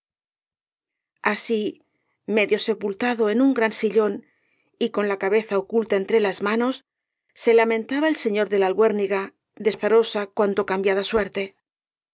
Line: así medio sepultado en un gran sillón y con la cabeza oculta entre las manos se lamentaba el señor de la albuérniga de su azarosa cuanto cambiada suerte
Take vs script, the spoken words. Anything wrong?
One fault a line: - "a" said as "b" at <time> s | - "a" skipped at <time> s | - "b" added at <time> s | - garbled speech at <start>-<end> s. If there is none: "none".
- "su" skipped at 9.7 s